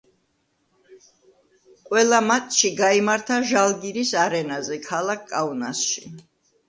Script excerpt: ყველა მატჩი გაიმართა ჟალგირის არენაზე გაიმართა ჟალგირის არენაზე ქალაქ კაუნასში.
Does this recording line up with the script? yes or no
no